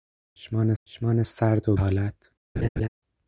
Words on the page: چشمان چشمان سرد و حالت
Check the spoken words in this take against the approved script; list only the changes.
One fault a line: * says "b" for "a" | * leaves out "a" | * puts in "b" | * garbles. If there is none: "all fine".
all fine